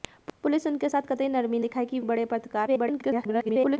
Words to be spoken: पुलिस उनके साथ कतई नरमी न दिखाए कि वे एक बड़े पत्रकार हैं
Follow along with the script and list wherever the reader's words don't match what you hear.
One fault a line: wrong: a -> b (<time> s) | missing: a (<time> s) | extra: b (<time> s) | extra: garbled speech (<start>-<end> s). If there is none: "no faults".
missing: न (1.6 s)
missing: वे एक (2.0 s)
extra: garbled speech (2.7-3.8 s)